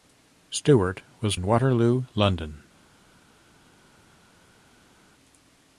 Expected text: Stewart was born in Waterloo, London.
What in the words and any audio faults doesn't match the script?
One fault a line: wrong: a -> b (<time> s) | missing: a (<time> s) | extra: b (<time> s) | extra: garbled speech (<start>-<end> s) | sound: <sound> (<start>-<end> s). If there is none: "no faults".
missing: born (1.4 s)